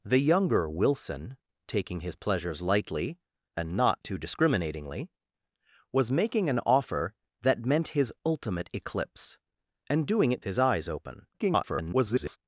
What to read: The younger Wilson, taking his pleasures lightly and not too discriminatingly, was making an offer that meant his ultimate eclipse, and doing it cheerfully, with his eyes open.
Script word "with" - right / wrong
wrong